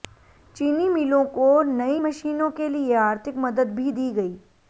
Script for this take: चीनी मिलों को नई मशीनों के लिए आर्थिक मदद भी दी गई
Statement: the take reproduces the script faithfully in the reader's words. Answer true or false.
true